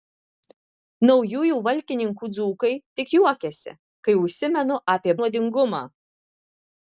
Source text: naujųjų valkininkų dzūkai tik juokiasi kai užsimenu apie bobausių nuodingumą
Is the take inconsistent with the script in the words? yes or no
yes